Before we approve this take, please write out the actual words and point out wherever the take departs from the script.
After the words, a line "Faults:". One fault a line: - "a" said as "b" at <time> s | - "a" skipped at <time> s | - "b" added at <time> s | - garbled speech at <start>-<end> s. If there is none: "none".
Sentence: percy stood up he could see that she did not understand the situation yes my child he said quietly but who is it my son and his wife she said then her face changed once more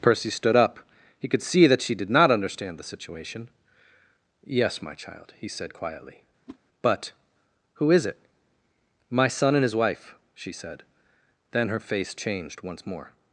percy stood up he could see that she did not understand the situation yes my child he said quietly but who is it my son and his wife she said then her face changed once more
Faults:
none